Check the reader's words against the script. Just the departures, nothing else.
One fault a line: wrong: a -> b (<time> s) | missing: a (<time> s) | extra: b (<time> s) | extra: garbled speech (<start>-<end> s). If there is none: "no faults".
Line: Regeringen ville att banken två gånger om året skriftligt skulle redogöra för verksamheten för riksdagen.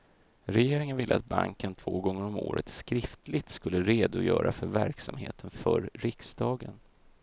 no faults